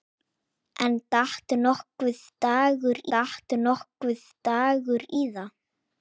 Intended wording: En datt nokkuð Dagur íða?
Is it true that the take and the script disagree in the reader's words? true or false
true